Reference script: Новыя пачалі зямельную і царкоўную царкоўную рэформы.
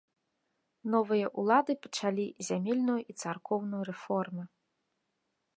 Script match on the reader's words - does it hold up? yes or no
no